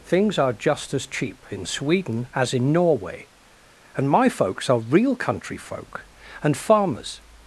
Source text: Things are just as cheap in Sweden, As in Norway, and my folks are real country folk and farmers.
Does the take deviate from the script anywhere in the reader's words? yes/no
no